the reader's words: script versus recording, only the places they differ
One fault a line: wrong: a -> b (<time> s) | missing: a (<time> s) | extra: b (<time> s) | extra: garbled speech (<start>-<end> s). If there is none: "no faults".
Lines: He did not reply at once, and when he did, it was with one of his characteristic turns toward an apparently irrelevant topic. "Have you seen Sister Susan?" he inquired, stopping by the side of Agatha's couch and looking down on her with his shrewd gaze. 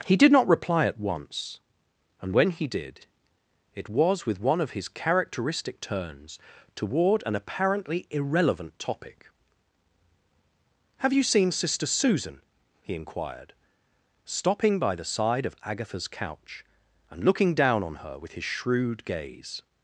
no faults